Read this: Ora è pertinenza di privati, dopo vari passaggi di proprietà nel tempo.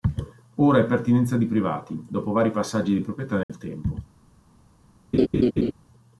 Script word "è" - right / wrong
right